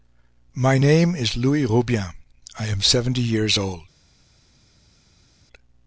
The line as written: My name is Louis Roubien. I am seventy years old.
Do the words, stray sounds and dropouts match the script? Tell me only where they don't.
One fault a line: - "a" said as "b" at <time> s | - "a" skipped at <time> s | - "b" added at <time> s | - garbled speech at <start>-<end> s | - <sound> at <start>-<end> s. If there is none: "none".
none